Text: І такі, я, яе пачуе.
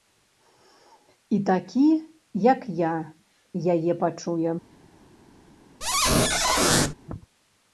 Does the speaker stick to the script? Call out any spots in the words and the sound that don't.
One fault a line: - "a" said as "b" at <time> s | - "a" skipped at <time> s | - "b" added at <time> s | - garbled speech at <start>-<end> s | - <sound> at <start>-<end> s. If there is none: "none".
- "як" added at 2.5 s
- squeak at 5.8-6.9 s